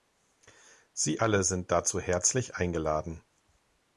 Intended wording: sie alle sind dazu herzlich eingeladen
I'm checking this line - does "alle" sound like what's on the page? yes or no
yes